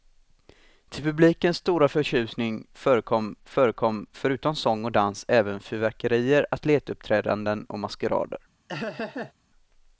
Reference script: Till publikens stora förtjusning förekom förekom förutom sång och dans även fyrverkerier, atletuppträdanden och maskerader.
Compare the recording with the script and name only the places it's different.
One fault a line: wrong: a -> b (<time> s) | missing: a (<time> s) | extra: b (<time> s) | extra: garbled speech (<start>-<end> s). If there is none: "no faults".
no faults